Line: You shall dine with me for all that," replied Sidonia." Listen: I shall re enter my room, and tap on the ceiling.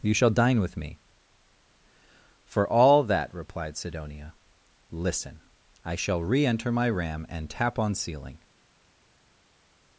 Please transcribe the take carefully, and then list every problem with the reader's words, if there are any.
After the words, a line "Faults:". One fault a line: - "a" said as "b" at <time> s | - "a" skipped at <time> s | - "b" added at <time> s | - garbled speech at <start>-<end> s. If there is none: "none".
You shall dine with me for all that," replied Sidonia." Listen: I shall re enter my ram, and tap on ceiling.
Faults:
- "room" said as "ram" at 6.9 s
- "the" skipped at 7.9 s